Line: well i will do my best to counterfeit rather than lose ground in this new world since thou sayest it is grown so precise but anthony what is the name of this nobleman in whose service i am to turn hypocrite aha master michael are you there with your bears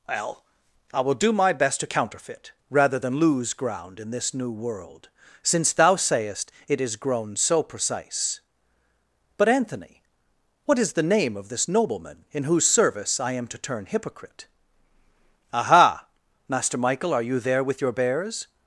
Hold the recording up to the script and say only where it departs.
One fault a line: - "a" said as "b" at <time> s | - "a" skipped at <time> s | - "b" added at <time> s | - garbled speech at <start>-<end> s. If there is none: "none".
none